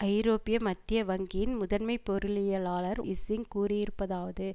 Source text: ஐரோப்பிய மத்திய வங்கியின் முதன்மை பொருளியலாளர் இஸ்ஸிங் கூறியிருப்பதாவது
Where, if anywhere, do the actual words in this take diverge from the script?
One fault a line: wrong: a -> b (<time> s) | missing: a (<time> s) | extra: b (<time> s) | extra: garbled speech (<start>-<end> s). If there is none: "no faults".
no faults